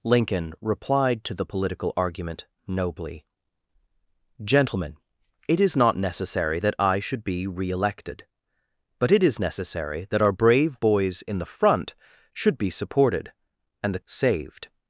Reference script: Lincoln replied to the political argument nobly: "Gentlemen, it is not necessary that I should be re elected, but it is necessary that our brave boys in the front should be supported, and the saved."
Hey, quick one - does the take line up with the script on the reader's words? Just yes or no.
yes